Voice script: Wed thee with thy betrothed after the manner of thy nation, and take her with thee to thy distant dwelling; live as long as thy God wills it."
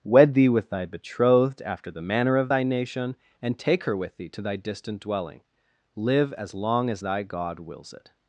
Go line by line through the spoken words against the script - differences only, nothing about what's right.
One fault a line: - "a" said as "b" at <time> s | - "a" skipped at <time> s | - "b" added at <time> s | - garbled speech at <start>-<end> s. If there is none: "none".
none